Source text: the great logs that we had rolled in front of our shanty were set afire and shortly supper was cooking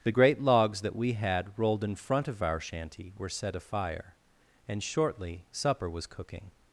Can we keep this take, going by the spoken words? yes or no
yes